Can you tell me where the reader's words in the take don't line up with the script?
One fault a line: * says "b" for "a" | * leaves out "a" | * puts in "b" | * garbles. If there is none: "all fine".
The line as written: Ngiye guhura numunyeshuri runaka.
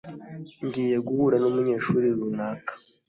all fine